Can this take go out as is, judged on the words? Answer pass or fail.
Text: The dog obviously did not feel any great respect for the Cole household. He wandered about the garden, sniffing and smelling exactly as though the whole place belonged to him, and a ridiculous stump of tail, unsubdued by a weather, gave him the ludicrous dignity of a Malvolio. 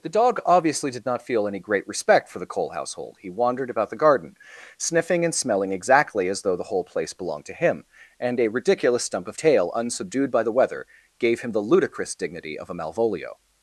fail